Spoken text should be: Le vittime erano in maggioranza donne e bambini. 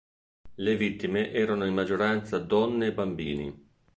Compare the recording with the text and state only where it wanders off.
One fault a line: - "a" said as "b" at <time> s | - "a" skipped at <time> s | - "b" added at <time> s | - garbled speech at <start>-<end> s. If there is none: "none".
none